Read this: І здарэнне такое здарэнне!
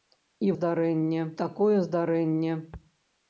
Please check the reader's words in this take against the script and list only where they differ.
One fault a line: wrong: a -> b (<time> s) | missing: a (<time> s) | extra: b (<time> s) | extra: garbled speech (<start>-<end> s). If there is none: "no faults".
no faults